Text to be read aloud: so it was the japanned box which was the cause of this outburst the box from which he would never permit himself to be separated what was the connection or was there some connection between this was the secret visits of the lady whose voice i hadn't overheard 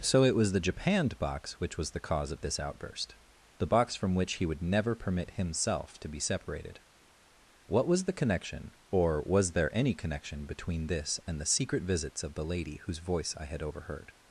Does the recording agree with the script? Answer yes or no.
no